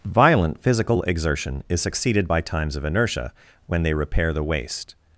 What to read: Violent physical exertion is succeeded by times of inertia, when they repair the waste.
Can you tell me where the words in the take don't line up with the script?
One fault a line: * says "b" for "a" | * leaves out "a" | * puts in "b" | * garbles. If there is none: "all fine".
all fine